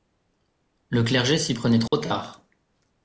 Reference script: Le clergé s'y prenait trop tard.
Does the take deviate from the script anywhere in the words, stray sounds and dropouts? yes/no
yes